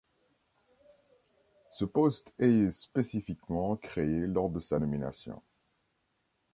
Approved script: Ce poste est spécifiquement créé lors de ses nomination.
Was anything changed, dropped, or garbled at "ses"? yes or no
yes